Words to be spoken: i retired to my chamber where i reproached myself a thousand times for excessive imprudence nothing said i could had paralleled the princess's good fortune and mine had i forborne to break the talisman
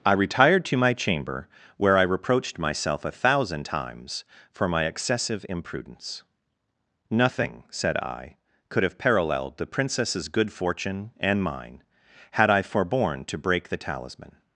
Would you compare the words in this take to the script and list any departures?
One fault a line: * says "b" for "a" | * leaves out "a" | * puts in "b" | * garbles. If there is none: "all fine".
* puts in "my"
* says "have" for "had"